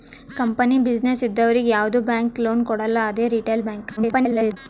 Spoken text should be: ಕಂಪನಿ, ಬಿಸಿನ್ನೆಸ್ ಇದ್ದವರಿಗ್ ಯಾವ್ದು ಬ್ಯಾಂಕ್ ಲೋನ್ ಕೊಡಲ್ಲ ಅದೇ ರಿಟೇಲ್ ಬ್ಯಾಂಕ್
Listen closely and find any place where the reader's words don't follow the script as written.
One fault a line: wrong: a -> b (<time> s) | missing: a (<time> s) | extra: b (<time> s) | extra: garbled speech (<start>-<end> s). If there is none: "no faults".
extra: garbled speech (4.0-4.6 s)